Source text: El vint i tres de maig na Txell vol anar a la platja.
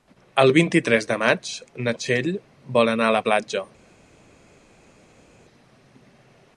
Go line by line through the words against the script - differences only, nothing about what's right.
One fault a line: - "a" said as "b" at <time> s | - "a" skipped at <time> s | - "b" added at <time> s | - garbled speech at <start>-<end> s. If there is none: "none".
none